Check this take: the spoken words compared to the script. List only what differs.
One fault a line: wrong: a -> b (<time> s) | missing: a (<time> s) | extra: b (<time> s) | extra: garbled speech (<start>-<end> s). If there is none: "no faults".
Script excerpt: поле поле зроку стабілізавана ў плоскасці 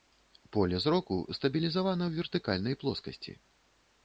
missing: поле (0.8 s)
extra: вертыкальнай (2.2 s)